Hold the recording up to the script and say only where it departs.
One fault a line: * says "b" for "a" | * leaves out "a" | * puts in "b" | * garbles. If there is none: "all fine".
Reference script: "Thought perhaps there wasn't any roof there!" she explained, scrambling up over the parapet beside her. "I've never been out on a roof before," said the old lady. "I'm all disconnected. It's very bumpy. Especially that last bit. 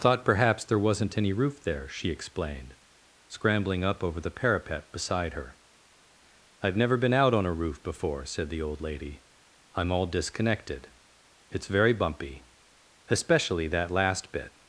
all fine